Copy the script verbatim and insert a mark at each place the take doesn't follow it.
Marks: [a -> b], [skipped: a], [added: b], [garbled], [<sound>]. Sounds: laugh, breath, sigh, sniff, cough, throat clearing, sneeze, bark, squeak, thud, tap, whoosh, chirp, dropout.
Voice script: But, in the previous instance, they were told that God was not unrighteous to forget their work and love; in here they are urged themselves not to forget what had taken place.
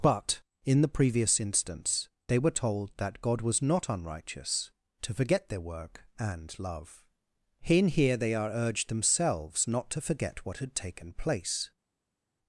But, in the previous instance, they were told that God was not unrighteous to forget their work and love; in here they are urged themselves not to forget what had taken place.